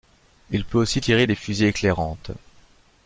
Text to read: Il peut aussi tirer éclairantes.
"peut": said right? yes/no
yes